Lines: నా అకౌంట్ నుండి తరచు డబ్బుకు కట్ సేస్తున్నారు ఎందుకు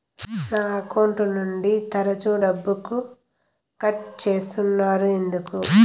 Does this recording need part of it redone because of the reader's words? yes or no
no